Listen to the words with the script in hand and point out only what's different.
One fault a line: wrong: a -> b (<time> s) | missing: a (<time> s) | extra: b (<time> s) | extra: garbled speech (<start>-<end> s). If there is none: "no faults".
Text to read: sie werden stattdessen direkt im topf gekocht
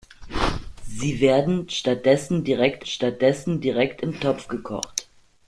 extra: stattdessen direkt (2.8 s)